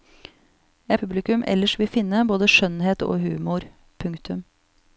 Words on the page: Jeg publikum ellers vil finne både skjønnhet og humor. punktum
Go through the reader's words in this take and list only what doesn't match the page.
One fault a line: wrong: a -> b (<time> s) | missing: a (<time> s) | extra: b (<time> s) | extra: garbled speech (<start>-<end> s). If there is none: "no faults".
no faults